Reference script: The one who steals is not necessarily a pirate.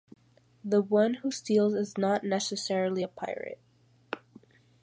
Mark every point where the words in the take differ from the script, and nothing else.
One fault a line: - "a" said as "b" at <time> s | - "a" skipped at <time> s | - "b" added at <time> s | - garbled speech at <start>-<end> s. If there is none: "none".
none